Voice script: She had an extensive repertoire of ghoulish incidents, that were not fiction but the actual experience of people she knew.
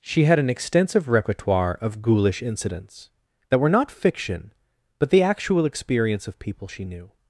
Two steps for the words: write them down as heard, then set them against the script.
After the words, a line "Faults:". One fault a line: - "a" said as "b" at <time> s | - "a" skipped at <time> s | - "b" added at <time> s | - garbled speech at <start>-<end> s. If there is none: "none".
She had an extensive repertoire of ghoulish incidents, that were not fiction but the actual experience of people she knew.
Faults:
none